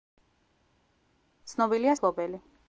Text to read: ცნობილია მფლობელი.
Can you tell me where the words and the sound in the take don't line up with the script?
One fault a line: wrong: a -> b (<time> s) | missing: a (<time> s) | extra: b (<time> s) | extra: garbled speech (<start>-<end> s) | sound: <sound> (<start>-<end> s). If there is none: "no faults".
no faults